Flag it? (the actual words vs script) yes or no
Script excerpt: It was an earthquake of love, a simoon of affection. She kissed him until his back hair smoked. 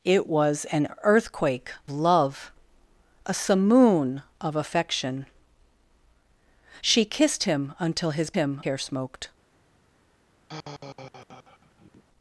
yes